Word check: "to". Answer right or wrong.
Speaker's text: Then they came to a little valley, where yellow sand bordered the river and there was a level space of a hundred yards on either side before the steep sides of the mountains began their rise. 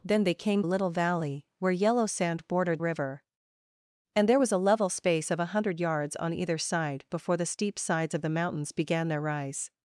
wrong